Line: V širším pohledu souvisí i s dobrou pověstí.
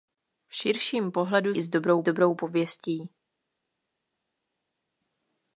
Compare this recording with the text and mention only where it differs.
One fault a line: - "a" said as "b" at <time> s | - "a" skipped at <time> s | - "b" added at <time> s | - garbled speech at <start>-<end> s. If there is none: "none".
- "souvisí" skipped at 1.6 s
- "dobrou" added at 2.0 s